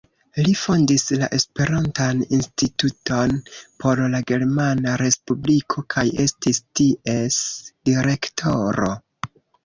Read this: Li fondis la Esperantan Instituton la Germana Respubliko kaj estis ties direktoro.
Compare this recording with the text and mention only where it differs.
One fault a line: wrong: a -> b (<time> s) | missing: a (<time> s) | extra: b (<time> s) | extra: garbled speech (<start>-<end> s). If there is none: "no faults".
extra: por (3.8 s)